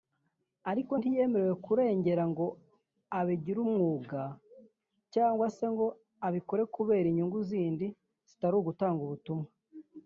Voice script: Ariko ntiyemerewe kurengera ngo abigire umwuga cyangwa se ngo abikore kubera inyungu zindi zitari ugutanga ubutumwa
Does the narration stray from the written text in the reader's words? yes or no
no